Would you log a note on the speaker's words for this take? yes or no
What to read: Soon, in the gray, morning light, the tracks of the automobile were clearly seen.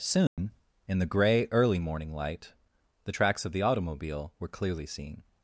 yes